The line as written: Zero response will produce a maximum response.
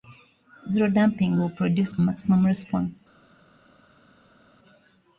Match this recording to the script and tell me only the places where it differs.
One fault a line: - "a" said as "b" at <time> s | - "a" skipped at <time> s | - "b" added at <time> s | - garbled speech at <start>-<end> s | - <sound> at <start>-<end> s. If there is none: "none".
- "response" said as "damping" at 0.9 s